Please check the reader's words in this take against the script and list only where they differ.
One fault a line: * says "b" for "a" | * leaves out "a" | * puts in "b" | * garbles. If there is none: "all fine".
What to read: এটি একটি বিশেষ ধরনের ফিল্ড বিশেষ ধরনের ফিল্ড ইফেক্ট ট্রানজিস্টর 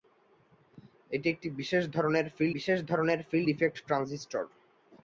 all fine